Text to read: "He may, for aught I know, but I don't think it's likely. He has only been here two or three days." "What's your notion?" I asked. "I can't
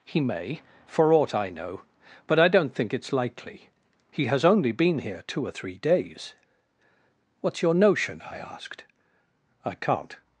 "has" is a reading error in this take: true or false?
false